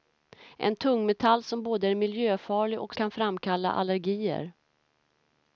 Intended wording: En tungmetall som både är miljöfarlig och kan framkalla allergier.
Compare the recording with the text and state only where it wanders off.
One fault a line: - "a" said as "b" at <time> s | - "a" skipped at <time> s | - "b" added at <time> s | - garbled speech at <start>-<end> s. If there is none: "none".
none